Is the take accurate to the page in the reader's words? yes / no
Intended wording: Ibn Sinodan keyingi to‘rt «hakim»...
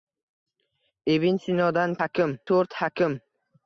no